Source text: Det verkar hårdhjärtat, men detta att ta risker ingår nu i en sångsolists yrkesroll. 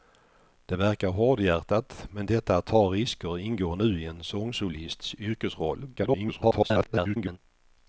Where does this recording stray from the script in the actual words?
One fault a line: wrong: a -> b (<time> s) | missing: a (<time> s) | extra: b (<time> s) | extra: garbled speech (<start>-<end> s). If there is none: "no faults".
extra: garbled speech (6.0-7.4 s)